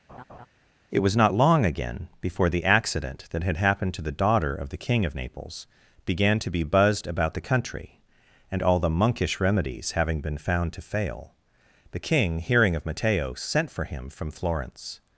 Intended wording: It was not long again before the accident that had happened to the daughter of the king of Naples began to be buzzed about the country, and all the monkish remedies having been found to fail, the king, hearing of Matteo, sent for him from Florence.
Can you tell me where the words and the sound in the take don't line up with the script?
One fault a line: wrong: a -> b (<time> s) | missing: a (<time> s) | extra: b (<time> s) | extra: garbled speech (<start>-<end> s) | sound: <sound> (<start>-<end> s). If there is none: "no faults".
sound: laugh (0.1-0.5 s)